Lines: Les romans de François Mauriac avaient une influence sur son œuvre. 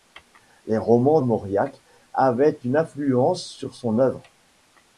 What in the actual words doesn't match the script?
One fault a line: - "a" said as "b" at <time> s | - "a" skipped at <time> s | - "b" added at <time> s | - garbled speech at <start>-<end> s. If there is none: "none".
- "de François" skipped at 1.2 s